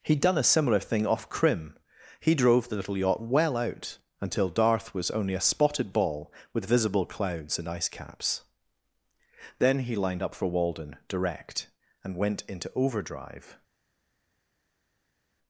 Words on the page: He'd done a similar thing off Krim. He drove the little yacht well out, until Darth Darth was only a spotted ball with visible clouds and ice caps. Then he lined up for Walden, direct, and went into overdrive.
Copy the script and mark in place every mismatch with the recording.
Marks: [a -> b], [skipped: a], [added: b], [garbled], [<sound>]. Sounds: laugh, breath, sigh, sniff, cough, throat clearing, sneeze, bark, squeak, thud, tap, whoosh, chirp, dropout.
He'd done a similar thing off Krim. He drove the little yacht well out, until Darth [skipped: Darth] was only a spotted ball with visible clouds and ice caps. Then he lined up for Walden, direct, and went into overdrive.